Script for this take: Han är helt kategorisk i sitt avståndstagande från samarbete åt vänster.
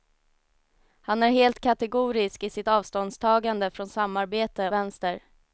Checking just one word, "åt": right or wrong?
wrong